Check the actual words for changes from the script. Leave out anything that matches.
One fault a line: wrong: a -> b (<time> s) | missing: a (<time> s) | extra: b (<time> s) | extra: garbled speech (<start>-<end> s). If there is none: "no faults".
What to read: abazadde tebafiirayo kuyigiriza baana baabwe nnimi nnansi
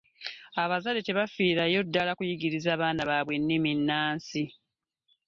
extra: ddala (1.8 s)